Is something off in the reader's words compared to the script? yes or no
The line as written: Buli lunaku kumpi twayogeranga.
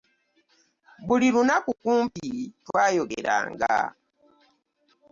no